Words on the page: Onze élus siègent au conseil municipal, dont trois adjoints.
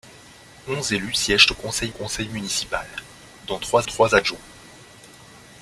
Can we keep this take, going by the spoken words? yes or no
no